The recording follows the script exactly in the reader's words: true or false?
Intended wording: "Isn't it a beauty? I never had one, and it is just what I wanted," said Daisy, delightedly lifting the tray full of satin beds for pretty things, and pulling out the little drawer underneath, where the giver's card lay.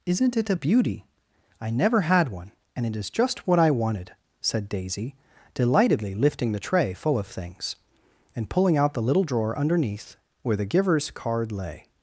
false